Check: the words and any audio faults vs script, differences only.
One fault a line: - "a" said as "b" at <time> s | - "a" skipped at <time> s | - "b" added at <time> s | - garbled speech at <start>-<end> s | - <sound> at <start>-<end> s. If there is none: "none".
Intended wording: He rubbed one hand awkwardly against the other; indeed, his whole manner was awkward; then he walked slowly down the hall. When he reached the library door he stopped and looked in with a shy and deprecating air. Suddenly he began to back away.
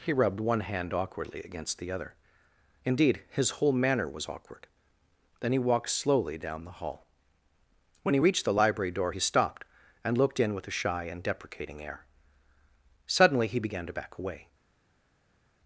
none